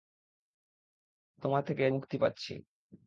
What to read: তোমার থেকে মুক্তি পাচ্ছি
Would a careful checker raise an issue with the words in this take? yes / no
no